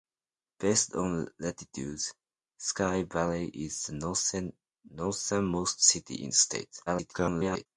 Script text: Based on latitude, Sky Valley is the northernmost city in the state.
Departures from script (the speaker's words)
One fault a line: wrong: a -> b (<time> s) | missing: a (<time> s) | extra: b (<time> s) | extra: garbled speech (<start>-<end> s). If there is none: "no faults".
extra: garbled speech (6.9-7.7 s)